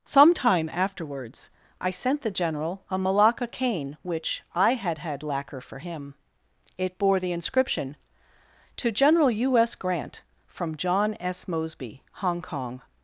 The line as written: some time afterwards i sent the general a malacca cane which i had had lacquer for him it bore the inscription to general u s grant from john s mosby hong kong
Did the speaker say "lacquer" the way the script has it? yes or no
yes